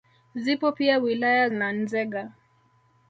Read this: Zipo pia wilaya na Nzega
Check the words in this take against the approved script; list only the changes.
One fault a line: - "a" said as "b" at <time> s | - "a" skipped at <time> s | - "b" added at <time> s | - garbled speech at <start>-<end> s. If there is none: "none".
none